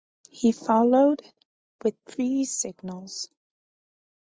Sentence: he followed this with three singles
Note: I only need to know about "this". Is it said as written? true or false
false